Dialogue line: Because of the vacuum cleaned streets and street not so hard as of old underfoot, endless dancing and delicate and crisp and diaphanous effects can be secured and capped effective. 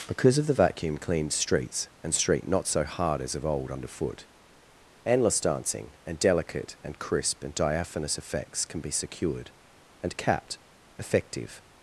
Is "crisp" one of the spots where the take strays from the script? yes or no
no